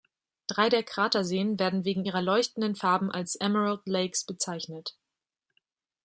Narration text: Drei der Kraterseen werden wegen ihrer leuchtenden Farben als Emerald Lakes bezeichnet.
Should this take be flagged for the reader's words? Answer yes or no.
no